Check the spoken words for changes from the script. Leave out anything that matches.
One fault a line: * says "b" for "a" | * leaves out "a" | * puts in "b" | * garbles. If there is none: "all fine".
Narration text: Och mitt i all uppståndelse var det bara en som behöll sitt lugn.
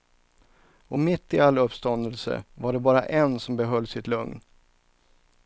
all fine